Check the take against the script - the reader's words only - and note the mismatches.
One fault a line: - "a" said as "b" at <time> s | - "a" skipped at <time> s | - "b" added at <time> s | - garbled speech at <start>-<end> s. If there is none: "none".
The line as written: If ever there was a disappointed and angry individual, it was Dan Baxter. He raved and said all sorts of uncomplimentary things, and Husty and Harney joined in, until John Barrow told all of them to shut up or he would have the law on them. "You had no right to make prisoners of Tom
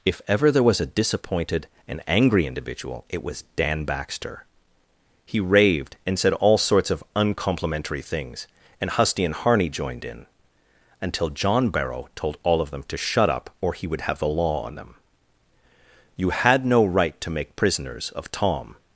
none